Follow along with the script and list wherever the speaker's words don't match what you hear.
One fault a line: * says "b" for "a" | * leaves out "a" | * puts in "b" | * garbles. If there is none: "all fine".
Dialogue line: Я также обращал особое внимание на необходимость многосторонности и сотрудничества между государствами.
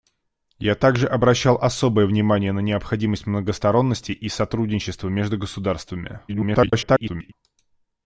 * garbles